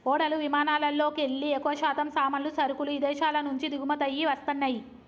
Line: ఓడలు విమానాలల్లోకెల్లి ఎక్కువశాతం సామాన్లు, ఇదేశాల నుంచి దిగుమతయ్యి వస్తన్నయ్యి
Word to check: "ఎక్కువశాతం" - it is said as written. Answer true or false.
true